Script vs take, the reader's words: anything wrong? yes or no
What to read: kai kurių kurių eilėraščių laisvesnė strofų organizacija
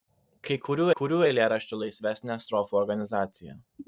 no